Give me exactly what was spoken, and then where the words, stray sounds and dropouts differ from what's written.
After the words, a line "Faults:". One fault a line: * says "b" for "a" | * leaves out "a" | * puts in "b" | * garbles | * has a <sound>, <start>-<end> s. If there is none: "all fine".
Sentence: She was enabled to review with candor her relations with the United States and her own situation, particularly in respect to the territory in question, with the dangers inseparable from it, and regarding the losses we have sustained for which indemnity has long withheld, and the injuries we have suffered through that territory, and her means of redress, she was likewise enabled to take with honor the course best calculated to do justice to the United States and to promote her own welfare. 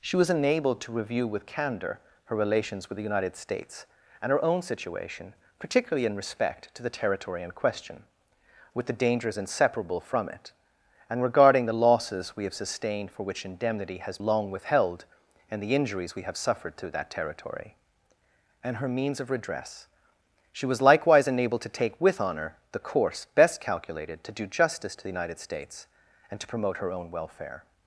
She was enabled to review with candor her relations with the United States and her own situation, particularly in respect to the territory in question, with the dangers inseparable from it, and regarding the losses we have sustained for which indemnity has long withheld, and the injuries we have suffered through that territory, and her means of redress, she was likewise enabled to take with honor the course best calculated to do justice to the United States and to promote her own welfare.
Faults:
all fine